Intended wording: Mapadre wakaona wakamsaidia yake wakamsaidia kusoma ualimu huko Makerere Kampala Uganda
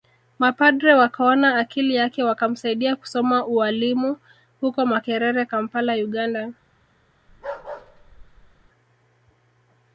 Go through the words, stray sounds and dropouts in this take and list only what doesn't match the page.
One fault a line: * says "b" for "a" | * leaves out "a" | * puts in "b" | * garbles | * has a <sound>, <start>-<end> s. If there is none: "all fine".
* says "akili" for "wakamsaidia"
* has a bark, 7.3-8.7 s